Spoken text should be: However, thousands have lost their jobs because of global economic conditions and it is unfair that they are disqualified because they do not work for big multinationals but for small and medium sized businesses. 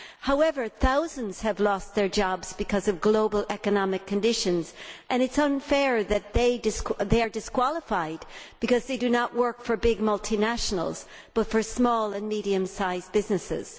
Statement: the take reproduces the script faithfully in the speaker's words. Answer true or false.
true